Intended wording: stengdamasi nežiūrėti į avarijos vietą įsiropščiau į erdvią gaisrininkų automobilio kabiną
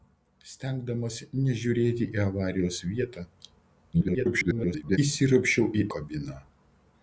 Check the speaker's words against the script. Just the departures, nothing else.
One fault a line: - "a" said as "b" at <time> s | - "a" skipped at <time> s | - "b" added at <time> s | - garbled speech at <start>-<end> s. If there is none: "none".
- garbled speech at 3.9-5.0 s
- "erdvią gaisrininkų automobilio" skipped at 5.9 s